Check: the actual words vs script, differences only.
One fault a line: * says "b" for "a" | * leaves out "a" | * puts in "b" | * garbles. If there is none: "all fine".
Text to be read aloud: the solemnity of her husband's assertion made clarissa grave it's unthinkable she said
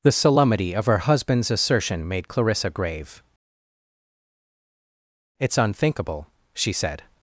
all fine